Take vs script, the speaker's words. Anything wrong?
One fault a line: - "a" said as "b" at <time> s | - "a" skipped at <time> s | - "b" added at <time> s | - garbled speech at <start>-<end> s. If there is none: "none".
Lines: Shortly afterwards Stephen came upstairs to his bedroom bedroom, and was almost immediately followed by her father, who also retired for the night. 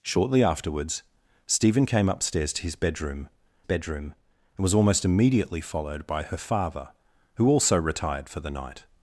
none